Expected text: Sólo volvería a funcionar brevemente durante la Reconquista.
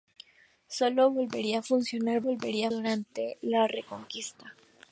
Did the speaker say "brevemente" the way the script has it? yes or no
no